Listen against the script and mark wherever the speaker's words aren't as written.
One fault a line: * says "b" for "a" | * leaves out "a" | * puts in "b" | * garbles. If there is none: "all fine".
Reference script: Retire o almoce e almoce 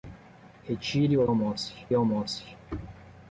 all fine